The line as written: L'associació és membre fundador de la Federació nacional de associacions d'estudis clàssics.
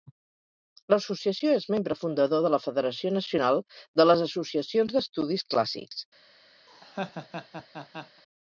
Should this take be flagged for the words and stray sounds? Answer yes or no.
yes